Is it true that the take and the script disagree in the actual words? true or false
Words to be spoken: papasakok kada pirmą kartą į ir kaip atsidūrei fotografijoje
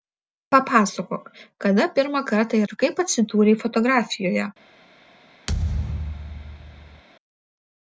false